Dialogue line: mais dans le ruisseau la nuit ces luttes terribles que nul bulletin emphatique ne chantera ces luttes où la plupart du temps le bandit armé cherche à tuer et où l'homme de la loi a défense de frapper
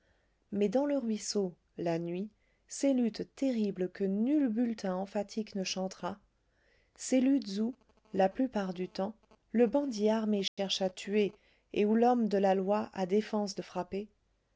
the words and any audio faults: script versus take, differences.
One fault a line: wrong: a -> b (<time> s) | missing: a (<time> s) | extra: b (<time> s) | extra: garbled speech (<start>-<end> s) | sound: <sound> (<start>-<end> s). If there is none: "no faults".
sound: dropout (10.5-10.6 s)